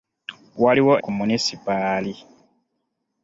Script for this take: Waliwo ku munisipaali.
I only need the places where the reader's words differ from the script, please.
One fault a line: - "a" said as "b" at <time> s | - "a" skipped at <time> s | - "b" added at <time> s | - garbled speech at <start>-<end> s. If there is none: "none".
none